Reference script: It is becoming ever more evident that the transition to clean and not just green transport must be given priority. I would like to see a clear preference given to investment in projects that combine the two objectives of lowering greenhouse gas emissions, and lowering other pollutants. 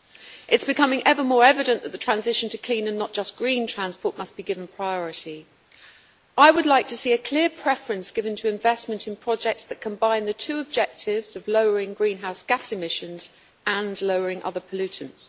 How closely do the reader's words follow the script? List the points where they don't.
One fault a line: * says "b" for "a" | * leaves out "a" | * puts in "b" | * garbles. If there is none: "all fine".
all fine